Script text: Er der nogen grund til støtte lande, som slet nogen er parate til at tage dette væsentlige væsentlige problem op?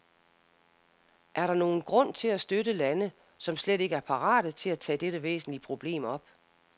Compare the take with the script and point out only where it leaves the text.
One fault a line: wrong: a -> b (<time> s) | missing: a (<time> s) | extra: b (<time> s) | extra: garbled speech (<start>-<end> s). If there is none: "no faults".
extra: at (2.3 s)
wrong: nogen -> ikke (3.8 s)
missing: væsentlige (5.6 s)